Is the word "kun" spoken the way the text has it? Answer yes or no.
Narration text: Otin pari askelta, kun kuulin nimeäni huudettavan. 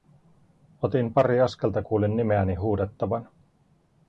no